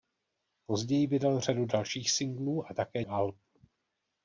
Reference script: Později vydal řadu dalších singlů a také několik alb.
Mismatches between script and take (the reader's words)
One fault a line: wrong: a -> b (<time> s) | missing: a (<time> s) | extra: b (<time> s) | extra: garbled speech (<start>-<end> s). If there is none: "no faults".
missing: několik (3.0 s)